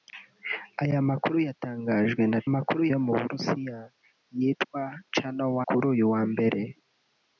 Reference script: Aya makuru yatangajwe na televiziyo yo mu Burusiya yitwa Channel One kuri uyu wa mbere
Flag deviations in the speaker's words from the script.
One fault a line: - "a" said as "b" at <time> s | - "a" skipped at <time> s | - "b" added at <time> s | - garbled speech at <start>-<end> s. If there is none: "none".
- "televiziyo" said as "makuru" at 2.5 s
- "One" skipped at 5.5 s